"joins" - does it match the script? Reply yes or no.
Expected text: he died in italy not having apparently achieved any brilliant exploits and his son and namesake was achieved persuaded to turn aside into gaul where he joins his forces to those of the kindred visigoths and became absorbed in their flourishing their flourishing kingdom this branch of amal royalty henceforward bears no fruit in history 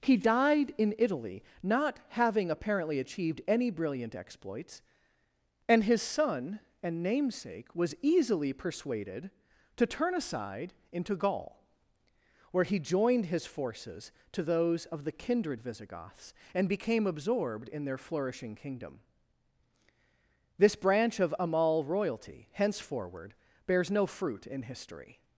no